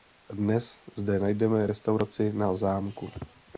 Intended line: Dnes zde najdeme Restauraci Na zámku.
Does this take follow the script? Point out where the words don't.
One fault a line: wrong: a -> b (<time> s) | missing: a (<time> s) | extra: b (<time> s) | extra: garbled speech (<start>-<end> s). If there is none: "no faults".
no faults